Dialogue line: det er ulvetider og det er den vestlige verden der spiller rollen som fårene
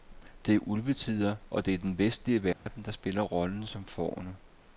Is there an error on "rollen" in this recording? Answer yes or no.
no